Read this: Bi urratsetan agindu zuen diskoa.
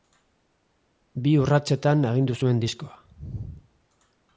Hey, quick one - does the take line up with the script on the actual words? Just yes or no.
yes